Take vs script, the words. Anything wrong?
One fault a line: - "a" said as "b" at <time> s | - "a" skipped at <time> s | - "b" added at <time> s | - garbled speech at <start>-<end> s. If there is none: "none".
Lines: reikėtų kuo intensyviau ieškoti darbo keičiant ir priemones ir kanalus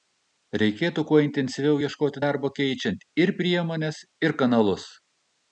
none